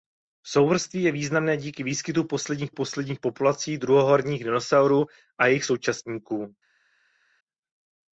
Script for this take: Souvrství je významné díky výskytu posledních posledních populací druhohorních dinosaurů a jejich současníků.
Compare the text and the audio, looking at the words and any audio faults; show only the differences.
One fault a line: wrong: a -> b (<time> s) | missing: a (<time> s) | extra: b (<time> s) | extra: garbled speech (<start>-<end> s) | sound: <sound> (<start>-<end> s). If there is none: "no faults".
no faults